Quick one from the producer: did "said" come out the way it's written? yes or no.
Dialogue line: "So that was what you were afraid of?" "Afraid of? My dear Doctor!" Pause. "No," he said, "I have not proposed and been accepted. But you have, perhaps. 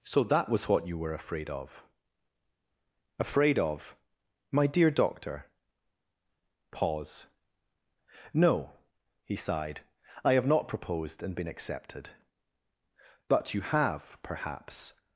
no